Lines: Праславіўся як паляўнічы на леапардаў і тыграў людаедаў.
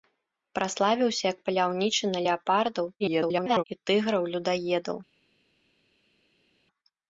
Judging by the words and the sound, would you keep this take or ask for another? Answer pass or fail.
fail